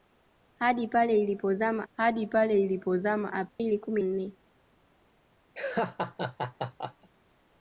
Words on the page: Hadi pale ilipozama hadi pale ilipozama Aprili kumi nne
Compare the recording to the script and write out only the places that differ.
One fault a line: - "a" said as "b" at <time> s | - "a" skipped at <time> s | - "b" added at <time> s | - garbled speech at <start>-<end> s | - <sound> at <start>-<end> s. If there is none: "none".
- dropout at 3.5-3.6 s
- laugh at 5.5-7.1 s